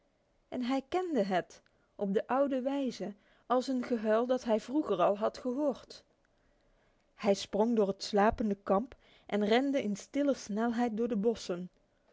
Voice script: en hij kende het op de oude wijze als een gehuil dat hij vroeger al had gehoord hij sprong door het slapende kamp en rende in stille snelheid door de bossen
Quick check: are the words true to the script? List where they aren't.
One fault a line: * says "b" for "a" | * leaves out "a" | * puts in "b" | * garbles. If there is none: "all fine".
all fine